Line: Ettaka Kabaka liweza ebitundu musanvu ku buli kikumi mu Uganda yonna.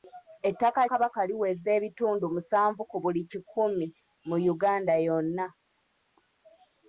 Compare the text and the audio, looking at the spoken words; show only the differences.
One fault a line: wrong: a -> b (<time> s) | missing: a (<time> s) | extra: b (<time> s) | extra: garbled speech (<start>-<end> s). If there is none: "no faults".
no faults